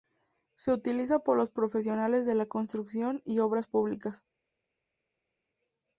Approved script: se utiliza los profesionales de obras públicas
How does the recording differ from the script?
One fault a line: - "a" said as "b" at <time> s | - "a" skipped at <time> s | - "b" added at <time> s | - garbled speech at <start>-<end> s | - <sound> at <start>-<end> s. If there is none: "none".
- "por" added at 1.2 s
- "la construcción y" added at 2.3 s